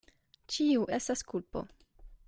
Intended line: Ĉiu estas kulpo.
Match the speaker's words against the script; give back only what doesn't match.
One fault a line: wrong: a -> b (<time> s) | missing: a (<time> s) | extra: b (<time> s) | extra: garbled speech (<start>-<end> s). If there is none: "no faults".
no faults